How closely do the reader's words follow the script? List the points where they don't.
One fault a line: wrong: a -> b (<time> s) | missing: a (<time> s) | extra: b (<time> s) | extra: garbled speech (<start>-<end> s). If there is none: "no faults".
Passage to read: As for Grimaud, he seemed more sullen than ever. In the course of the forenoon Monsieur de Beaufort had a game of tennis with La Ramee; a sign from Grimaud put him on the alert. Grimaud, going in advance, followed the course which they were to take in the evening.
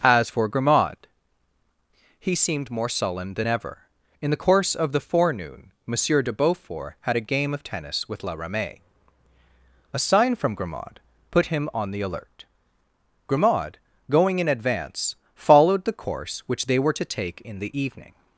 no faults